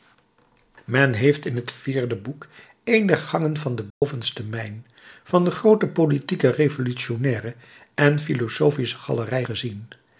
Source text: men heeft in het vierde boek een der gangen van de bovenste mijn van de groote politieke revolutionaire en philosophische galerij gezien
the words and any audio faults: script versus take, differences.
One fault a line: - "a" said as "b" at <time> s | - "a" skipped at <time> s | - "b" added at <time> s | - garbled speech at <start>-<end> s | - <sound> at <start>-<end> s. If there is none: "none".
- dropout at 3.9-4.0 s